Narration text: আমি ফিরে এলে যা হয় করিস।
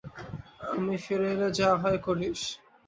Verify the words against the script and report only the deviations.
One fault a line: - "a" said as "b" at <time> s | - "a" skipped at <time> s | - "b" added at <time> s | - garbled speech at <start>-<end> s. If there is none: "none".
none